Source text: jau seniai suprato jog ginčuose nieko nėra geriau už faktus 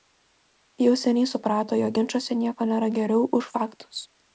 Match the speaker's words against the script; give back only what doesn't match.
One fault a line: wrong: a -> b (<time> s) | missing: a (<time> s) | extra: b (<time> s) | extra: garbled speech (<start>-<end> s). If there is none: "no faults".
no faults